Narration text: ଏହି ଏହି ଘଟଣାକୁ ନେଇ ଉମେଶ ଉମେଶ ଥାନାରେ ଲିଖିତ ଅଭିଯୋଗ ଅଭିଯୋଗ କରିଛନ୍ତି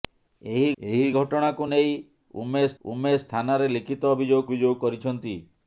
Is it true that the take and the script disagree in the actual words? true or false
false